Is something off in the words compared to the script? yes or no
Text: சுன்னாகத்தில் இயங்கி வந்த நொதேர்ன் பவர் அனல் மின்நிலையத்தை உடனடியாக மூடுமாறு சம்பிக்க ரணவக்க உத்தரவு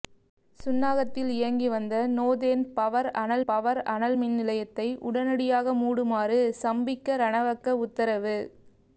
yes